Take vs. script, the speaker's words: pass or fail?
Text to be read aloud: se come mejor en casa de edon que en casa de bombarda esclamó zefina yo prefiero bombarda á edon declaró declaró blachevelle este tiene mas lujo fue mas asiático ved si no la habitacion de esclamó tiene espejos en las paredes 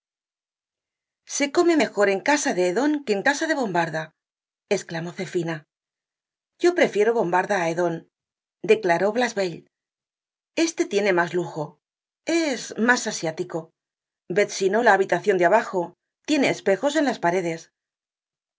fail